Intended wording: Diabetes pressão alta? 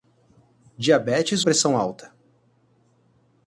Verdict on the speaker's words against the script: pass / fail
pass